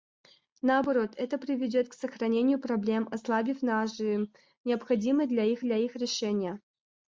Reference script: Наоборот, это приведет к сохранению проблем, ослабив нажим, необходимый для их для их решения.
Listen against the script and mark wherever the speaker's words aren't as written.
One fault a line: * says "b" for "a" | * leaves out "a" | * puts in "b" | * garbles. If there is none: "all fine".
all fine